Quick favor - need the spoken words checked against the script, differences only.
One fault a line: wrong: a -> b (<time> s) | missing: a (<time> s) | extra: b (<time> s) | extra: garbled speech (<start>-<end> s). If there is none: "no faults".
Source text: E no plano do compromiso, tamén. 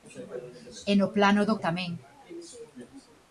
missing: compromiso (1.6 s)